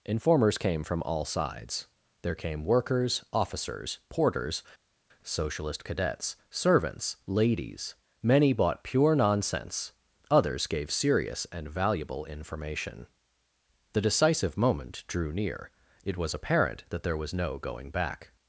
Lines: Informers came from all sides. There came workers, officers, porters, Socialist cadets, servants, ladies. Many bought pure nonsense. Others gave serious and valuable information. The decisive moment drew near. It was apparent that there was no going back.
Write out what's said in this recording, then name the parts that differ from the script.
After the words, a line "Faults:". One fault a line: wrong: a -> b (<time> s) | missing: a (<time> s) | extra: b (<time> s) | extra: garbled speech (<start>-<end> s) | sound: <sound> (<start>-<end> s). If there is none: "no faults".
Informers came from all sides. There came workers, officers, porters, Socialist cadets, servants, ladies. Many bought pure nonsense. Others gave serious and valuable information. The decisive moment drew near. It was apparent that there was no going back.
Faults:
no faults